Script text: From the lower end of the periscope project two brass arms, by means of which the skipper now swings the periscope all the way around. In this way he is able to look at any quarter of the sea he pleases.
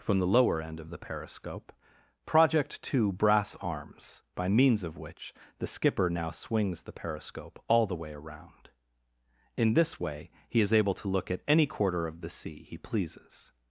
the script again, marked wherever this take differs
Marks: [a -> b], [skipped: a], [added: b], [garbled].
From the lower end of the periscope project two brass arms, by means of which the skipper now swings the periscope all the way around. In this way he is able to look at any quarter of the sea he pleases.